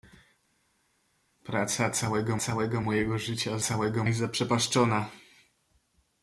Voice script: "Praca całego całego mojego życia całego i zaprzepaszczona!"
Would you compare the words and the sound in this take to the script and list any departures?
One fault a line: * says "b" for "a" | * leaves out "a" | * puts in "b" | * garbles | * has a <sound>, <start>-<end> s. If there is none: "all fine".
all fine